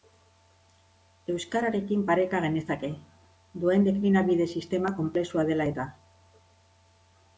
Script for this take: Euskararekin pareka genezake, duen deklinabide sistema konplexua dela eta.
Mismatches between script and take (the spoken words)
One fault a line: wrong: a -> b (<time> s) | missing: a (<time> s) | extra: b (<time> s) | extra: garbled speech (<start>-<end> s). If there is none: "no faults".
no faults